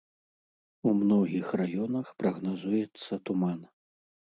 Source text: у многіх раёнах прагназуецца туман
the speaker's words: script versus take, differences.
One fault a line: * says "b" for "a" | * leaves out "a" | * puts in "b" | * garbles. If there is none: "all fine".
all fine